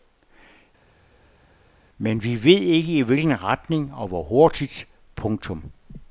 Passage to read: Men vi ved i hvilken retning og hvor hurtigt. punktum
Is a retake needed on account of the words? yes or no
yes